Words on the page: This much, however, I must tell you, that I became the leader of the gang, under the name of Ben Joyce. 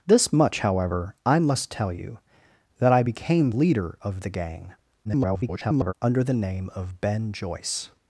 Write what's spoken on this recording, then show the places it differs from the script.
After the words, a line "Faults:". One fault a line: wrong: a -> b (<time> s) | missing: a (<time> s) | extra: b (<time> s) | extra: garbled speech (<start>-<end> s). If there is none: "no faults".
This much, however, I must tell you, that I became leader of the gang, [garbled] under the name of Ben Joyce.
Faults:
missing: the (3.5 s)
extra: garbled speech (5.0-5.9 s)